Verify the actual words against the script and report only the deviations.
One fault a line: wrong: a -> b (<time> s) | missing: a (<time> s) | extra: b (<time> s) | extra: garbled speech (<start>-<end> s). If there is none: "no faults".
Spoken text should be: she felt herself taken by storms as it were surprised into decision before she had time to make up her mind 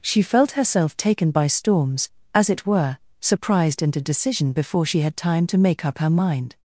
no faults